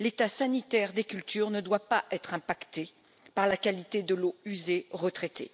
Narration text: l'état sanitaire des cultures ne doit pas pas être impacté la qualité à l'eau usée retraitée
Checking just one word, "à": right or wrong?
wrong